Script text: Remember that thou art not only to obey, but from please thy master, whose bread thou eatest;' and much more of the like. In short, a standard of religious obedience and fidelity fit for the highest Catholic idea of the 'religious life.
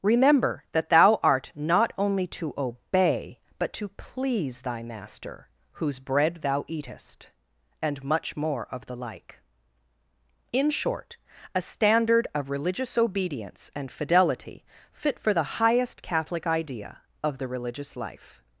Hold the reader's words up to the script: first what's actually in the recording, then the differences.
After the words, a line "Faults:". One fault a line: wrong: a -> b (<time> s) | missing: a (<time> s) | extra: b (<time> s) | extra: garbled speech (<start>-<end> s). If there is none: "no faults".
Remember that thou art not only to obey, but to please thy master, whose bread thou eatest;' and much more of the like. In short, a standard of religious obedience and fidelity fit for the highest Catholic idea of the 'religious life.
Faults:
wrong: from -> to (3.7 s)